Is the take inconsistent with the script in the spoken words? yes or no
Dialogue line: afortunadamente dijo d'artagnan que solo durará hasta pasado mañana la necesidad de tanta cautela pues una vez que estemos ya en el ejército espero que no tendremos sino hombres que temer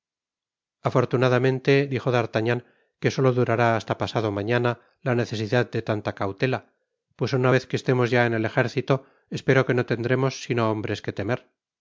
no